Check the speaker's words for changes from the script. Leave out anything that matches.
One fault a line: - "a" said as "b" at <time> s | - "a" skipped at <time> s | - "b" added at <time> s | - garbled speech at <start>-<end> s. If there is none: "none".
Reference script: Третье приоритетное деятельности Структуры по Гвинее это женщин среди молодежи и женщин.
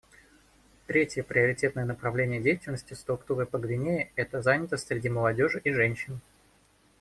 - "направление" added at 1.9 s
- "женщин" said as "занятость" at 4.4 s